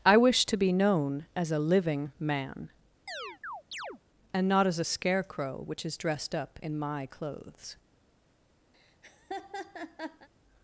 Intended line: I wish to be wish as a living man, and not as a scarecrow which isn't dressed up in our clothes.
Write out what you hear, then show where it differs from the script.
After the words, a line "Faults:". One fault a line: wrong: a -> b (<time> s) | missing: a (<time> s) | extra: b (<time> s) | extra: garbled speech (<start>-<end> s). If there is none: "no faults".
I wish to be known as a living man, and not as a scarecrow which is dressed up in my clothes.
Faults:
wrong: wish -> known (0.7 s)
wrong: isn't -> is (5.8 s)
wrong: our -> my (6.8 s)